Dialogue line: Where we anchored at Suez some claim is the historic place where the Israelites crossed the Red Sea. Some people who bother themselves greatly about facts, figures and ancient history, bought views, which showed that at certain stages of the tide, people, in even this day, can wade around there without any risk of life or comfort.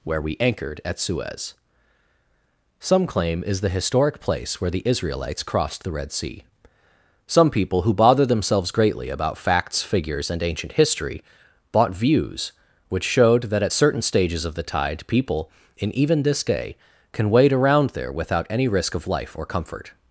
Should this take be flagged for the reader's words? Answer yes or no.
no